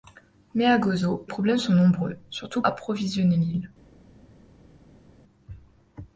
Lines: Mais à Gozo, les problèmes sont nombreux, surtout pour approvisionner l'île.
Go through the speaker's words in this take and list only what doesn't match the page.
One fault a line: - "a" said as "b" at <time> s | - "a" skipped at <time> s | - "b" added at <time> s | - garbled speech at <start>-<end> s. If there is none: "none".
- "les" skipped at 1.3 s
- "pour" skipped at 2.6 s